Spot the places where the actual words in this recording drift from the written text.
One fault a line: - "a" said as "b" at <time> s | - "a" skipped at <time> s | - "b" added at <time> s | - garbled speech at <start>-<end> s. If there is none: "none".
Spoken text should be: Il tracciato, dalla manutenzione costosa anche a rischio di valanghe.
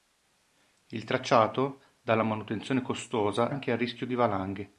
none